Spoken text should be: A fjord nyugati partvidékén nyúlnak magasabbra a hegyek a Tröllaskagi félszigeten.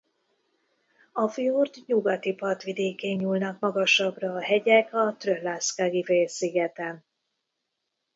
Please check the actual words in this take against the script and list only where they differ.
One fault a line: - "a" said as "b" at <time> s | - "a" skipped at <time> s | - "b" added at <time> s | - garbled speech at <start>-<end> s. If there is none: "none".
none